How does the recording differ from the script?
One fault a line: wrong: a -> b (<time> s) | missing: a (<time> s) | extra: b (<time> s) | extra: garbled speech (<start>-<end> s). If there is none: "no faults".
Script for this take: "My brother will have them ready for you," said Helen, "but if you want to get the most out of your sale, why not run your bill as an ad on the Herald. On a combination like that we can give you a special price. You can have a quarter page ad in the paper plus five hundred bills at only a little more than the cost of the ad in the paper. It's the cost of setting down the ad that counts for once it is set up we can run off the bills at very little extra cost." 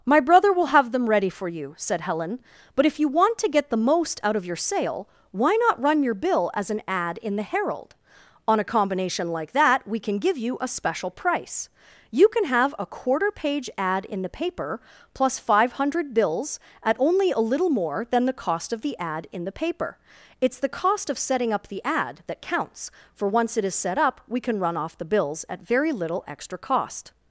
wrong: on -> in (7.2 s)
wrong: down -> up (21.5 s)